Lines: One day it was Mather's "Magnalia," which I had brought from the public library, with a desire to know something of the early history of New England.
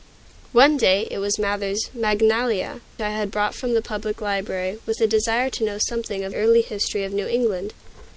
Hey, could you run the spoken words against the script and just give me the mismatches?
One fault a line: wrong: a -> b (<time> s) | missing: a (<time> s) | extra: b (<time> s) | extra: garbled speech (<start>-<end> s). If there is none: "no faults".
missing: which (2.8 s)
missing: the (6.3 s)